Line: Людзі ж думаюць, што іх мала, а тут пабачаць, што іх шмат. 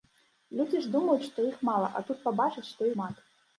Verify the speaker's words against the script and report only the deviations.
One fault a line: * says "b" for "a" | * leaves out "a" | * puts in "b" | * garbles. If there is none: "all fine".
* leaves out "іх"